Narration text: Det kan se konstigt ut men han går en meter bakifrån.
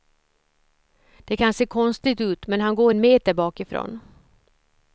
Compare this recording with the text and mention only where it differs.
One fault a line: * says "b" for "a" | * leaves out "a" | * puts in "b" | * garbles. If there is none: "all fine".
all fine